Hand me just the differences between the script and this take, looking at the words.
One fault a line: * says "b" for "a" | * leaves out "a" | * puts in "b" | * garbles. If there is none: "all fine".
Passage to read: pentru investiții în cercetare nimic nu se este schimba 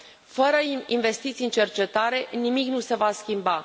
* says "fără" for "pentru"
* says "va" for "este"